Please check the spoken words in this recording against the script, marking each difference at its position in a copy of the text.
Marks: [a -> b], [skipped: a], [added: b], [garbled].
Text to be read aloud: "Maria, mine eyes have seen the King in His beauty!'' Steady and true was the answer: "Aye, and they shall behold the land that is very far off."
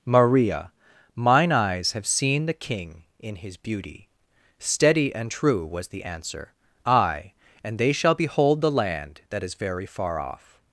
"Maria, mine eyes have seen the King in His beauty!'' Steady and true was the answer: "Aye, and they shall behold the land that is very far off."